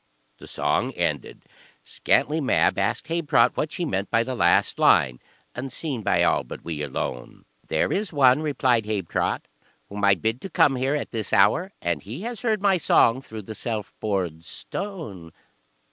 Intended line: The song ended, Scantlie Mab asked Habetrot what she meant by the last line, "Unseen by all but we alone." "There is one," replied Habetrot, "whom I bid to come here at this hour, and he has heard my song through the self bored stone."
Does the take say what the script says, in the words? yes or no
yes